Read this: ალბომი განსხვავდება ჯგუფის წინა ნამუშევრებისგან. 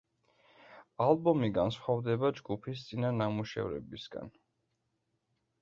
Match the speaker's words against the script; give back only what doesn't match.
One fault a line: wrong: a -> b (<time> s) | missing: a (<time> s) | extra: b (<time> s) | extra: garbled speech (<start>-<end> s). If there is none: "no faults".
no faults